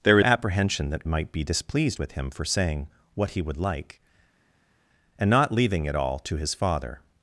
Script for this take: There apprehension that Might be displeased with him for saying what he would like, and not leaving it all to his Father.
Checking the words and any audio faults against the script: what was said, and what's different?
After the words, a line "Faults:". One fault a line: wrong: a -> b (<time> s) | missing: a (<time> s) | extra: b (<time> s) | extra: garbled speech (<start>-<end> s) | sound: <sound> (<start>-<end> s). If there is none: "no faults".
There apprehension that Might be displeased with him for saying what he would like, and not leaving it all to his Father.
Faults:
no faults